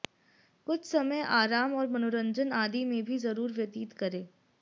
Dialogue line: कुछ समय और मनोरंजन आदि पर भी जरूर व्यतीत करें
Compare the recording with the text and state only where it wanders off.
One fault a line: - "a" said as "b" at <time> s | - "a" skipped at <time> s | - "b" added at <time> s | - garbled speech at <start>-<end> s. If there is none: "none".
- "आराम" added at 1.3 s
- "पर" said as "में" at 2.9 s